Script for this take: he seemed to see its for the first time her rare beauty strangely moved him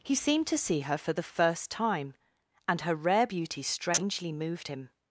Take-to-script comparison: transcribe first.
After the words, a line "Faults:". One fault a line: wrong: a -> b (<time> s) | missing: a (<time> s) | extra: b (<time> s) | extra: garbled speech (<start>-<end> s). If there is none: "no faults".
he seemed to see her for the first time and her rare beauty strangely moved him
Faults:
wrong: its -> her (0.8 s)
extra: and (2.7 s)